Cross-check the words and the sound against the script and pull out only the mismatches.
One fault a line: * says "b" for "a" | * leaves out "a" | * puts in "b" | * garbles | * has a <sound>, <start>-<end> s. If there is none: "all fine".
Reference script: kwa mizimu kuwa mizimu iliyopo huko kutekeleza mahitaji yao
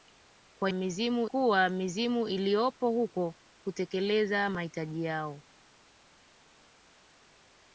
all fine